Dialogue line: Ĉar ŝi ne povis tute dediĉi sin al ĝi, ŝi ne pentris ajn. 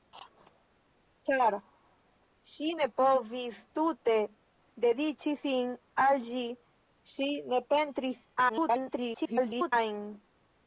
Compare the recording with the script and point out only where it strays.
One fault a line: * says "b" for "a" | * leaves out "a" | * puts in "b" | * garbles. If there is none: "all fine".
* garbles